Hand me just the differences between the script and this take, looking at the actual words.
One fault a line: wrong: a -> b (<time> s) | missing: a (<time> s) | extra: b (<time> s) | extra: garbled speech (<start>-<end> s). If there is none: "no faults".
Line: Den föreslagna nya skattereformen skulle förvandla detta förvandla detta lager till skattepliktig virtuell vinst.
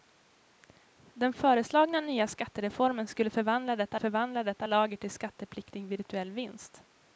no faults